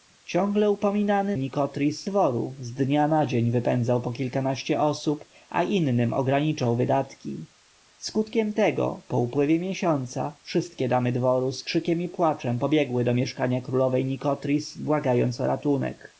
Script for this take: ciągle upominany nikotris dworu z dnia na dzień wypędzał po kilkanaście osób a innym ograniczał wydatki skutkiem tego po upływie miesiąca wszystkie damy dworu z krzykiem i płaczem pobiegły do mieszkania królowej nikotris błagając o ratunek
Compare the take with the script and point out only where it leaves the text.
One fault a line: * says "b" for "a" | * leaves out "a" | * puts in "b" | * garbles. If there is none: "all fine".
all fine